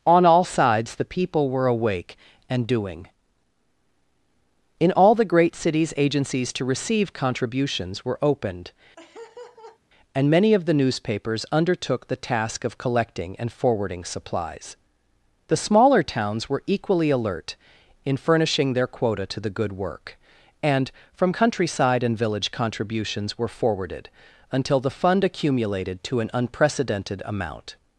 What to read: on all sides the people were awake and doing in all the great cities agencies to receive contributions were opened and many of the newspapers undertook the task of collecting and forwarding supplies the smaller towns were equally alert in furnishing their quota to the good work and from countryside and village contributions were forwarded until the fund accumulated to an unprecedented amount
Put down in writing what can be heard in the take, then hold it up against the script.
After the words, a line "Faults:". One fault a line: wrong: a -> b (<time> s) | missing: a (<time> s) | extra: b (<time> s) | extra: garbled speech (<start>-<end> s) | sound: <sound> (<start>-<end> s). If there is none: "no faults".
on all sides the people were awake and doing in all the great cities agencies to receive contributions were opened and many of the newspapers undertook the task of collecting and forwarding supplies the smaller towns were equally alert in furnishing their quota to the good work and from countryside and village contributions were forwarded until the fund accumulated to an unprecedented amount
Faults:
sound: laugh (9.0-9.8 s)